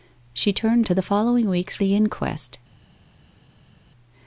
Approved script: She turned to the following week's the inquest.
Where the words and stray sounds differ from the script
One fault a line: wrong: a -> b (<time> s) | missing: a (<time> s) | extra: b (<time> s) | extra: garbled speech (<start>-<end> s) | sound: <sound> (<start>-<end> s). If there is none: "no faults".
no faults